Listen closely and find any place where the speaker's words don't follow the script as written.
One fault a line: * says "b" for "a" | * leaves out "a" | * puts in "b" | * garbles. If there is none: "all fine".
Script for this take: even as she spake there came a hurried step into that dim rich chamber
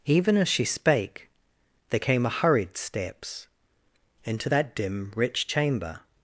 * says "steps" for "step"